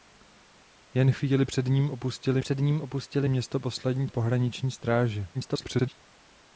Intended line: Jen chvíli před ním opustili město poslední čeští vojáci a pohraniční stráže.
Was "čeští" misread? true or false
true